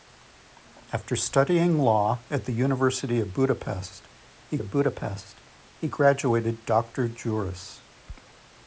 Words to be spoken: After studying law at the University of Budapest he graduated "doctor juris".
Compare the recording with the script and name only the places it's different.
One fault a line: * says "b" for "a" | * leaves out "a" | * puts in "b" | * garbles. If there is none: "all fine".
* puts in "of Budapest he"